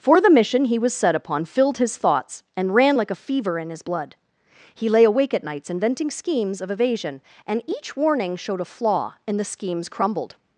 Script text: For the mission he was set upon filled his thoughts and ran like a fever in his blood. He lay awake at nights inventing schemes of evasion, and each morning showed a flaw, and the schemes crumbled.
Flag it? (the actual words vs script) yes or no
yes